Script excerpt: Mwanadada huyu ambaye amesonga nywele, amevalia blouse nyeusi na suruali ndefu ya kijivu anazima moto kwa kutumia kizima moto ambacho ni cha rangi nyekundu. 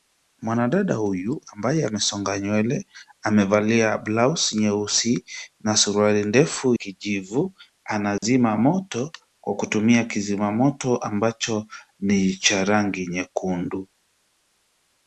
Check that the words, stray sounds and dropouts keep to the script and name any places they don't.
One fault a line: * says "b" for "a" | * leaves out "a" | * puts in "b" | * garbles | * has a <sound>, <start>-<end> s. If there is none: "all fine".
* leaves out "ya"
* has a dropout, 8.2-8.2 s